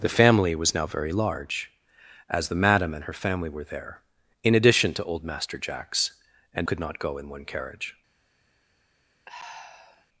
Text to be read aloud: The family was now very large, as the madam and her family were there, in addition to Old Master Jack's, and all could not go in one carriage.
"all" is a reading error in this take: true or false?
true